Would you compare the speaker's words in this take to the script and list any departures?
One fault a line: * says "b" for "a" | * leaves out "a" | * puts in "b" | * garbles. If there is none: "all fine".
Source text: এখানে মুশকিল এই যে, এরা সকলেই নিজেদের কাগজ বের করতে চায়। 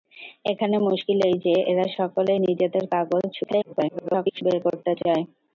* garbles